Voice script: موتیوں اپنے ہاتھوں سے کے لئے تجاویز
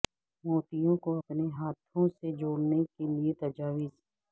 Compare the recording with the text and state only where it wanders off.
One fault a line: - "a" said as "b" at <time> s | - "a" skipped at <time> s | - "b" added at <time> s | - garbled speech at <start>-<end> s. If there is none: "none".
- "کو" added at 1.0 s
- "جوڑنے" added at 2.4 s